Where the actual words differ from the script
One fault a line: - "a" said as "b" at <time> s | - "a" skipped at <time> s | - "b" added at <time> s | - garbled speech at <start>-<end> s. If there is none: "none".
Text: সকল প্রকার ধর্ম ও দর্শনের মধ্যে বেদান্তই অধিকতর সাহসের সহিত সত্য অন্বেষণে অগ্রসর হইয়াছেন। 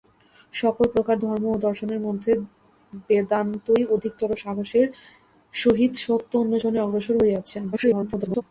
- garbled speech at 7.7-8.4 s